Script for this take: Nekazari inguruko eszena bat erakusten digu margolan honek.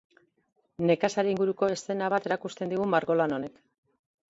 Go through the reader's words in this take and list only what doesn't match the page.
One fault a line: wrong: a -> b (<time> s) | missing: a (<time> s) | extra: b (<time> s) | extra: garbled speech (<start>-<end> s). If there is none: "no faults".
no faults